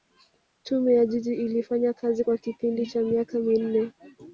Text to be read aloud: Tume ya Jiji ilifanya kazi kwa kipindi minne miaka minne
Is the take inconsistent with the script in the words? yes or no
yes